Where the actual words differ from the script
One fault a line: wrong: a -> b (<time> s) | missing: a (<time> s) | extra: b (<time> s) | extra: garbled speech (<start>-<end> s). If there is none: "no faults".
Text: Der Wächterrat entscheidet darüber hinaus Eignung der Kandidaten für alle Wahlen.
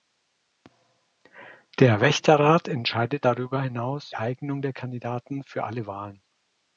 no faults